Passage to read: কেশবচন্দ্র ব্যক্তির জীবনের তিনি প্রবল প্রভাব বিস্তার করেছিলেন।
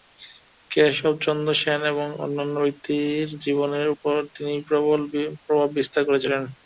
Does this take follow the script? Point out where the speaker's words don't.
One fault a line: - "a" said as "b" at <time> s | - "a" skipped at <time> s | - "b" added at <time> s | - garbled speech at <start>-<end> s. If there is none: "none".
- "সেন এবং অন্যান্য" added at 1.6 s
- "উপর" added at 3.9 s